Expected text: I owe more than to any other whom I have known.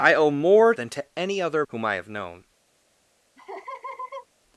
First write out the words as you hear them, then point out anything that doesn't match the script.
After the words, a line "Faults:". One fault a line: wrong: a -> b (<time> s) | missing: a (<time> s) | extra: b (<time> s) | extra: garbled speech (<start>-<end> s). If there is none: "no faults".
I owe more than to any other whom I have known.
Faults:
no faults